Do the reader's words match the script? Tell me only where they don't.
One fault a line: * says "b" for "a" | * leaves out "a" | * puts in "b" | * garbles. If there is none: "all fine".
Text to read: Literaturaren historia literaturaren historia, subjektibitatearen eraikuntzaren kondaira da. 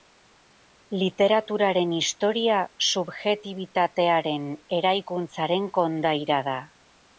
* leaves out "literaturaren historia"